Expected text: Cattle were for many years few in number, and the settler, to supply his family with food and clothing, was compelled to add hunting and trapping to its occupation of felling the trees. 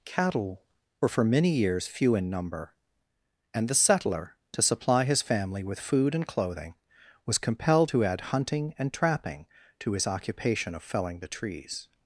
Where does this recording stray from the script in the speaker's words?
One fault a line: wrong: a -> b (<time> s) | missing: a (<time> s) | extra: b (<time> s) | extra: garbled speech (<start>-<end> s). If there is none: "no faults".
wrong: its -> his (9.9 s)